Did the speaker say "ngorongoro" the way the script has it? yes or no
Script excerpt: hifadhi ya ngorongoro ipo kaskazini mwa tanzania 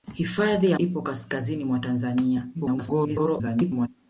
no